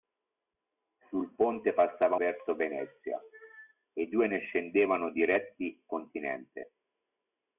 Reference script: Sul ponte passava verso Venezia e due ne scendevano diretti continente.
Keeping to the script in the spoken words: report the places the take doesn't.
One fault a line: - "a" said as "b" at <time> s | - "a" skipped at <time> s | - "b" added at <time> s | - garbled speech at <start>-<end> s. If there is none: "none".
none